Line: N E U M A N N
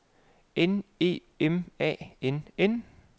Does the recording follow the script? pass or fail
fail